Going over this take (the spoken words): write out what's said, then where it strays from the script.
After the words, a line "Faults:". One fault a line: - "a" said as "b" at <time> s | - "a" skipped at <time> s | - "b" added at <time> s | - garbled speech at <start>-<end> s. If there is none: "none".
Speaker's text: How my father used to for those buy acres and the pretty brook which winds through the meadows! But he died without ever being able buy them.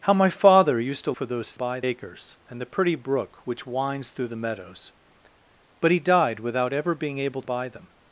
How my father used to for those buy acres and the pretty brook which winds through the meadows! But he died without ever being able buy them.
Faults:
none